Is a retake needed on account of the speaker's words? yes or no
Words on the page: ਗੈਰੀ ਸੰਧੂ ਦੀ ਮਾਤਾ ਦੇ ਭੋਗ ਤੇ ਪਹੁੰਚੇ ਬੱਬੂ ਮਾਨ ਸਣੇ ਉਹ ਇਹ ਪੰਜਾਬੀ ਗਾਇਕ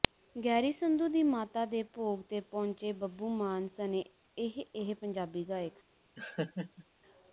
yes